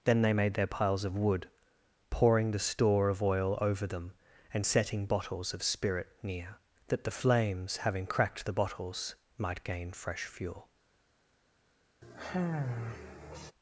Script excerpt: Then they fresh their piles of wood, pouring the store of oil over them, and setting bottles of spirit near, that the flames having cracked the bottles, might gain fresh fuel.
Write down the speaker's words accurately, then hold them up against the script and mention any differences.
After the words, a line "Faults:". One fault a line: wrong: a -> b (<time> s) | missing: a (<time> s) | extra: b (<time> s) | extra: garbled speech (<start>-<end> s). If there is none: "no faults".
Then they made their piles of wood, pouring the store of oil over them, and setting bottles of spirit near, that the flames having cracked the bottles, might gain fresh fuel.
Faults:
wrong: fresh -> made (0.3 s)